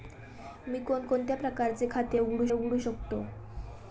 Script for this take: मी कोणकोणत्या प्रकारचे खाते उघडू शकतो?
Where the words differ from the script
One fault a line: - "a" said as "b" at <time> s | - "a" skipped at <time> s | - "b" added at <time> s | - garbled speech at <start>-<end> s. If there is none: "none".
- "उघडू" added at 2.5 s